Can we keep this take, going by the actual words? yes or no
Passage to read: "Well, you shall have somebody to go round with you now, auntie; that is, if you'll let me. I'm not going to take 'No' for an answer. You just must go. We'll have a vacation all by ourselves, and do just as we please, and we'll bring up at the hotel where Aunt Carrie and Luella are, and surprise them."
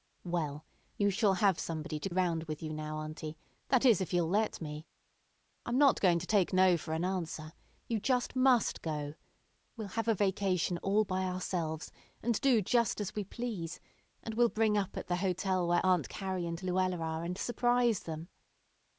no